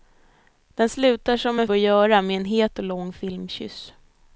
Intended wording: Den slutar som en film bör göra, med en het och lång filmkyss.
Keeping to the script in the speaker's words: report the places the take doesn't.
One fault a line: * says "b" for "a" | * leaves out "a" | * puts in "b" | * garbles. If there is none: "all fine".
* leaves out "film"